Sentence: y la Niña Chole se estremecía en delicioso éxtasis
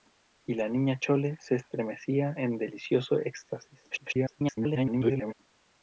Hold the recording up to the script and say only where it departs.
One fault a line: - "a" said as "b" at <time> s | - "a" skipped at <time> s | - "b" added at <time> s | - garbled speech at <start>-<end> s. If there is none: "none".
- garbled speech at 3.9-5.3 s